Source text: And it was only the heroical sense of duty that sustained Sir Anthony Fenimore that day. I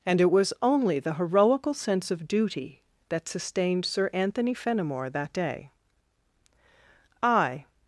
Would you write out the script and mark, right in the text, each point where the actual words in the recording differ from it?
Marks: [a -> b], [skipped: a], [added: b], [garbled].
And it was only the heroical sense of duty that sustained Sir Anthony Fenimore that day. I